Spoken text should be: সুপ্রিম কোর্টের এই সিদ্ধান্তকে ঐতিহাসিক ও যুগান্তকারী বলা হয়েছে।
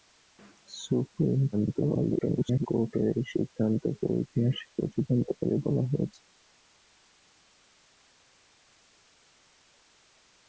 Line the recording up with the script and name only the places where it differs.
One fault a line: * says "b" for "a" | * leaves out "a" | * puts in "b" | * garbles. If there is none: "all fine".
* garbles